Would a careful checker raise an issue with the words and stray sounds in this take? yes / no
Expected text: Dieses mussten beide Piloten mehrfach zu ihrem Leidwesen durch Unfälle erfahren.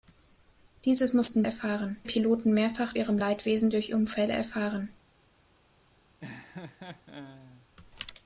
yes